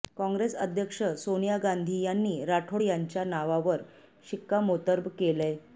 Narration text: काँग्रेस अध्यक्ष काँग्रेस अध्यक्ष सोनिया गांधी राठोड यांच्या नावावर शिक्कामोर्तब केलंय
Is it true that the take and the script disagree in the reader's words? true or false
true